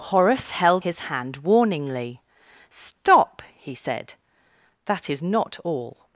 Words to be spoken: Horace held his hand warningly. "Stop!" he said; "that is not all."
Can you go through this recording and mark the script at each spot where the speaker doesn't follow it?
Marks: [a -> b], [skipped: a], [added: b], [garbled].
Horace held his hand warningly. "Stop!" he said; "that is not all."